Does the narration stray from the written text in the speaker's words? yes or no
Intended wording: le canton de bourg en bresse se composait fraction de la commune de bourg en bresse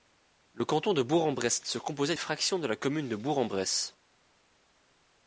no